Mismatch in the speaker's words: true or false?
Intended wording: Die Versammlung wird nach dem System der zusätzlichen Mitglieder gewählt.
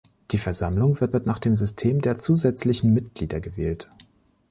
true